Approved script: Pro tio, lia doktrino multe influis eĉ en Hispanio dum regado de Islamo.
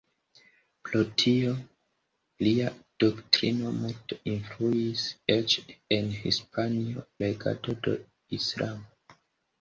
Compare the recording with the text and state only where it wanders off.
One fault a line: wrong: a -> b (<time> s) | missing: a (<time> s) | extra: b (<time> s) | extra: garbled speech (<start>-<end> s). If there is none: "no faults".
missing: dum (7.1 s)